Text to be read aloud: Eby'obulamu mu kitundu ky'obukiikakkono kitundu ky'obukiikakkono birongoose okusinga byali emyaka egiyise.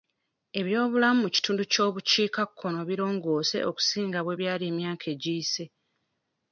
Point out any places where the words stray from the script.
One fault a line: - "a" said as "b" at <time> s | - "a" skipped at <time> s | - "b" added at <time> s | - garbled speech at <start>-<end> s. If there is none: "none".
- "kitundu ky'obukiikakkono" skipped at 2.8 s
- "bwe" added at 4.2 s